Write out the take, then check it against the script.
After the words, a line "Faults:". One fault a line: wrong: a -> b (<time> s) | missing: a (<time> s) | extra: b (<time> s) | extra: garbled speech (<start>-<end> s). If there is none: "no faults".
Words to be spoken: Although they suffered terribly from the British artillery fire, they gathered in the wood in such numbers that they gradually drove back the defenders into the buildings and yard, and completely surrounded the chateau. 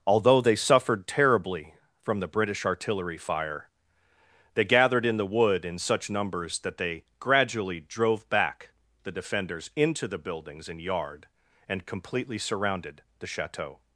Although they suffered terribly from the British artillery fire, they gathered in the wood in such numbers that they gradually drove back the defenders into the buildings and yard, and completely surrounded the chateau.
Faults:
no faults